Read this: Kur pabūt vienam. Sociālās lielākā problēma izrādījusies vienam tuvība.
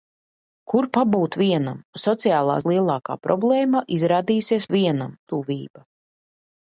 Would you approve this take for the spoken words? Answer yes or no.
yes